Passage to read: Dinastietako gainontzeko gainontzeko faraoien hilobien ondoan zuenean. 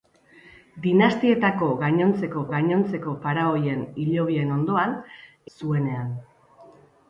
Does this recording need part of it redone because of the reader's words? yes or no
no